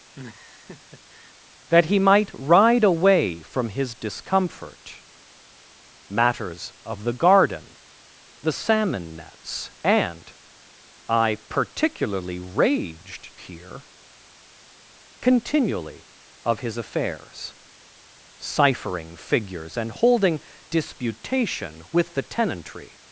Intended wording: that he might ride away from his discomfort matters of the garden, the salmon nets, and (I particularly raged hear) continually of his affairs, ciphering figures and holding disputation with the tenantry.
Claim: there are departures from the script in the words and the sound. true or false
true